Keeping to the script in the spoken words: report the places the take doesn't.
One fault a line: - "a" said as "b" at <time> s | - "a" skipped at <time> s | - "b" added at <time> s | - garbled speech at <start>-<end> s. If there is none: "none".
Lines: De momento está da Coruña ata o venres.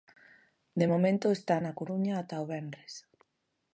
- "da" said as "na" at 1.6 s